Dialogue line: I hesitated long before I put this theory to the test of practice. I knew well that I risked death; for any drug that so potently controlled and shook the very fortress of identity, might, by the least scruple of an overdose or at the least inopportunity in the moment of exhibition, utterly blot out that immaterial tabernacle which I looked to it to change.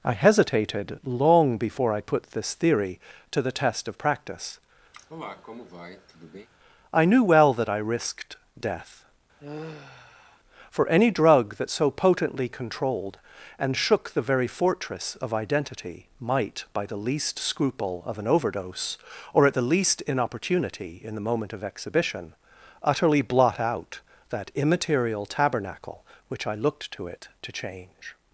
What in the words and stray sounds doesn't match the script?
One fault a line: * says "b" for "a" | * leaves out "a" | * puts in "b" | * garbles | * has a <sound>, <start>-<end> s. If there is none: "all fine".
* has a cough, 4.9-6.5 s
* has a sigh, 9.4-10.4 s